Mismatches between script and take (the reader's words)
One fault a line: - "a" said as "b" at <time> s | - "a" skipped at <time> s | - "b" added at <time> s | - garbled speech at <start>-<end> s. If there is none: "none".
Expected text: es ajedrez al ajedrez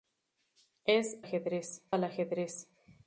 none